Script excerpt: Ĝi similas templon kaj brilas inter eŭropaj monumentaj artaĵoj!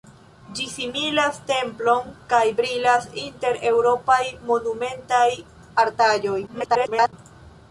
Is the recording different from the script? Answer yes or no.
yes